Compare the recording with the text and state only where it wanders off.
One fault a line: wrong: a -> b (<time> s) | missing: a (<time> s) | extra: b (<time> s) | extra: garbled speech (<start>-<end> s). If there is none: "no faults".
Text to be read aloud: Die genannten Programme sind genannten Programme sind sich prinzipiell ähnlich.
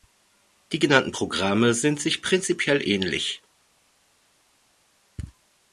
missing: genannten Programme sind (2.0 s)